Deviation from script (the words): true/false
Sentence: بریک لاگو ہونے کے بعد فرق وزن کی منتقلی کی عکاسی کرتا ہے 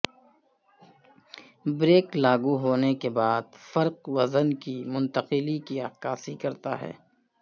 false